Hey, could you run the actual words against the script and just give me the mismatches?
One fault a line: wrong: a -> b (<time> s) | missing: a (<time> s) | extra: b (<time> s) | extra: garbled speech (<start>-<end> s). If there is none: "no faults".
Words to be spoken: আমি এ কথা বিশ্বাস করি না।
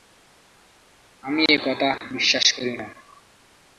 no faults